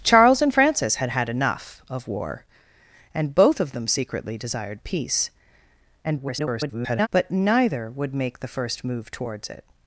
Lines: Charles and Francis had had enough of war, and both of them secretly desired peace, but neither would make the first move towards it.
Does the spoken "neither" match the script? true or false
true